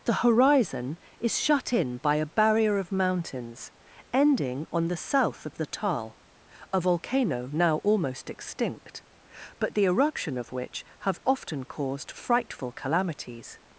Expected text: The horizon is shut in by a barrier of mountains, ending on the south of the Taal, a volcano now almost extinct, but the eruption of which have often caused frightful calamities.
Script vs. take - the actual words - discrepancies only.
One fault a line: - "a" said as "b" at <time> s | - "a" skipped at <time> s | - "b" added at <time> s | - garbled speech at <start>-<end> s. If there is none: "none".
none